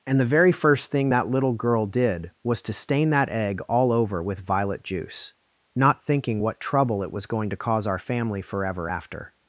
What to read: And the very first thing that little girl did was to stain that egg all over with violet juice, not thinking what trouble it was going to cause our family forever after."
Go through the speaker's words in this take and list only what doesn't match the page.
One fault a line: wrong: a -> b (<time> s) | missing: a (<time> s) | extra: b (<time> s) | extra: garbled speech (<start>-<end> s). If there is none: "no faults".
no faults